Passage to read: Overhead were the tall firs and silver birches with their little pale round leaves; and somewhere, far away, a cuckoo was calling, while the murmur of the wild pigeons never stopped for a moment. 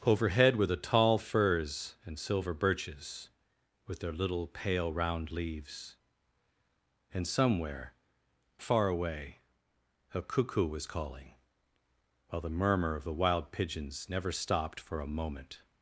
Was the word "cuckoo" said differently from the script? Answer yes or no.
no